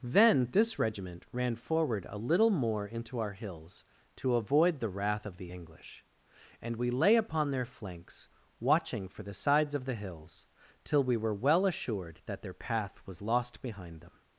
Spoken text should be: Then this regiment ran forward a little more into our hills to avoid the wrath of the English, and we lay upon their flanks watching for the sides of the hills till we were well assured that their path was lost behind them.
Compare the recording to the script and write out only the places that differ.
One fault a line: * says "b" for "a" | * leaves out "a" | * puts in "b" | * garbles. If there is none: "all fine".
all fine